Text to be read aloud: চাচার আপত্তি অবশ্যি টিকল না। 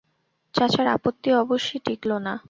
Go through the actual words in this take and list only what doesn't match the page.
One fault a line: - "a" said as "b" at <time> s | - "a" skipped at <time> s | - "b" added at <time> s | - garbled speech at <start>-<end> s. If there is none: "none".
none